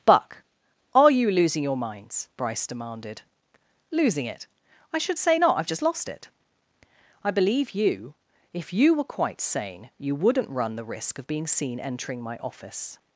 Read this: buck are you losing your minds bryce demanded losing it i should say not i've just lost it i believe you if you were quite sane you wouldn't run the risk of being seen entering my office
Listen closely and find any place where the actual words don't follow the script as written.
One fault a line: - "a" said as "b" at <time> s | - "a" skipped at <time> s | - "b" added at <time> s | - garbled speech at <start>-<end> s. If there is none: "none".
none